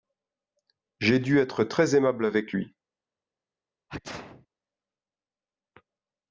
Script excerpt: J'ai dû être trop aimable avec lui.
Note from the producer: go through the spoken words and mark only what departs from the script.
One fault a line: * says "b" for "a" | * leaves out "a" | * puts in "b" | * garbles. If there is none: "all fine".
* says "très" for "trop"